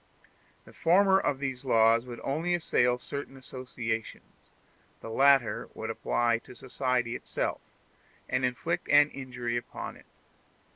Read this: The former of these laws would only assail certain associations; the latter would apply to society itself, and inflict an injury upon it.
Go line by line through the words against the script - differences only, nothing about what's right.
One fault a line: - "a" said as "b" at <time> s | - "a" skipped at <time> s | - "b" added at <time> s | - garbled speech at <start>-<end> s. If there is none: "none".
none